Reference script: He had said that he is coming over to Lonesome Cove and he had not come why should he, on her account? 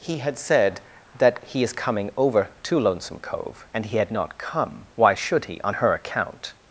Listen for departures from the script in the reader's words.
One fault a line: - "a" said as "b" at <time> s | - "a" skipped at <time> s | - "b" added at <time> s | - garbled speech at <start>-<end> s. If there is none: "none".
none